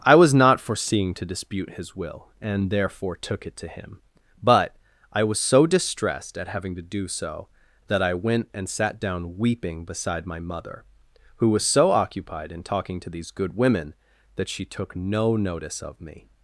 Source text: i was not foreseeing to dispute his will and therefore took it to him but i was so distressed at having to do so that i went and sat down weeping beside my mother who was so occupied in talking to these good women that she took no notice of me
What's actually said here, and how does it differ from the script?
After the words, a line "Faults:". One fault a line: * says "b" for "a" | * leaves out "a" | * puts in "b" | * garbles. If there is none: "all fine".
i was not foreseeing to dispute his will and therefore took it to him but i was so distressed at having to do so that i went and sat down weeping beside my mother who was so occupied in talking to these good women that she took no notice of me
Faults:
all fine